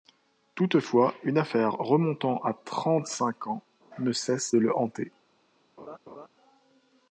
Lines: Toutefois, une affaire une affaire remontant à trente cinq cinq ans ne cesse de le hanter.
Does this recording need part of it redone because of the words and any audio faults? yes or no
yes